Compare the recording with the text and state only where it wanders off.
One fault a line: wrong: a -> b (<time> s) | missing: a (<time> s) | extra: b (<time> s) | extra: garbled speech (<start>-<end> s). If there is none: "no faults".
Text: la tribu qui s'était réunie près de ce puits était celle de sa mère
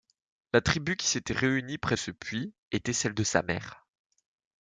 missing: de (1.9 s)